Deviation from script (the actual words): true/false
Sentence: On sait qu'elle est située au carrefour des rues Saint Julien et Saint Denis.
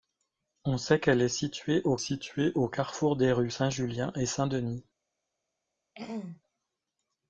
true